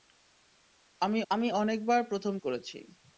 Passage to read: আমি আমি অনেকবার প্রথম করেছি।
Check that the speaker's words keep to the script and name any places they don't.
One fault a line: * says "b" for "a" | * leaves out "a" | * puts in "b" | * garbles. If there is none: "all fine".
all fine